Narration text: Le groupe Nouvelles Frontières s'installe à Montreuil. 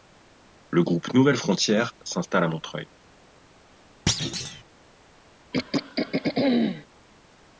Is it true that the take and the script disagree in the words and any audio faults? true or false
true